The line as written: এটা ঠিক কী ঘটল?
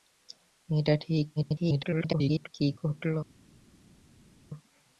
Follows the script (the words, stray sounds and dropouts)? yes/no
no